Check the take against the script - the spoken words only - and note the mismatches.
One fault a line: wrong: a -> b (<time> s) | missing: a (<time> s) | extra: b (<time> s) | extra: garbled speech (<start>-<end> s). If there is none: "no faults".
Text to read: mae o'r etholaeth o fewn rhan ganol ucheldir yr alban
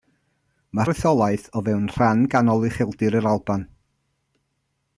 no faults